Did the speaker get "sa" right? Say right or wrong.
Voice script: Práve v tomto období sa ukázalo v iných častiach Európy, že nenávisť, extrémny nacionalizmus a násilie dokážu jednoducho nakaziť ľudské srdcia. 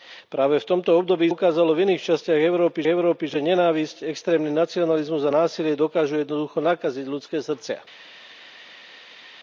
wrong